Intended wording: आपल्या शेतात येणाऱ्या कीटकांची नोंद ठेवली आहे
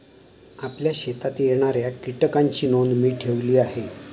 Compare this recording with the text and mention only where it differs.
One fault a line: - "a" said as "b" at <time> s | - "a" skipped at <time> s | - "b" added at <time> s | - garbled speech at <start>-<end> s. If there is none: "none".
- "मी" added at 2.9 s